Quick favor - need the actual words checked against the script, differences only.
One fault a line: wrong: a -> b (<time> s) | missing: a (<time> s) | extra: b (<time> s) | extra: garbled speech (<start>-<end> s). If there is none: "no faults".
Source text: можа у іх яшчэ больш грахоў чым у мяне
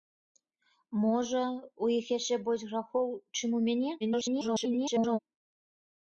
extra: garbled speech (4.0-5.2 s)